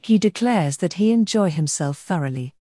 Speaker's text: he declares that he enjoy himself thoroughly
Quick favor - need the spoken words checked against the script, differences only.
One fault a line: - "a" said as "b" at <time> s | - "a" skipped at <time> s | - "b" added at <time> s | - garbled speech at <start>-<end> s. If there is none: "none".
none